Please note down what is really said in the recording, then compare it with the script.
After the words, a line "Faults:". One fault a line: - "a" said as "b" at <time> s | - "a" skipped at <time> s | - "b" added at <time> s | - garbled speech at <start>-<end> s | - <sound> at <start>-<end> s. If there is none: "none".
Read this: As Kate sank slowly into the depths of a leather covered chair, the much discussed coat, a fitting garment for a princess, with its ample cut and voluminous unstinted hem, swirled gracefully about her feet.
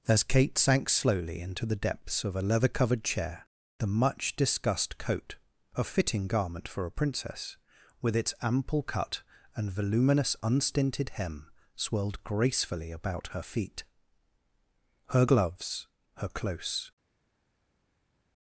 As Kate sank slowly into the depths of a leather covered chair, the much discussed coat, a fitting garment for a princess, with its ample cut and voluminous unstinted hem, swirled gracefully about her feet. Her gloves, her close
Faults:
- "Her gloves her close" added at 15.1 s